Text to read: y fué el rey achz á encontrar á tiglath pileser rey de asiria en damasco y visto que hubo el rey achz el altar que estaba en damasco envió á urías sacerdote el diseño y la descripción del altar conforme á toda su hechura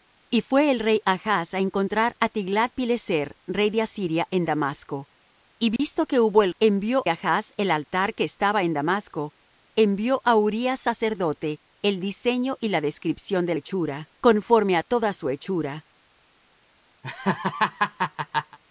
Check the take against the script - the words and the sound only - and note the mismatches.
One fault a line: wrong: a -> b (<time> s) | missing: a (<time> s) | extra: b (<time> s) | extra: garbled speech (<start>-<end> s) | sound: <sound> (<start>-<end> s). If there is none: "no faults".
sound: dropout (5.8-5.8 s)
wrong: rey -> envió (6.6 s)
wrong: altar -> hechura (13.5 s)
sound: laugh (17.0-18.6 s)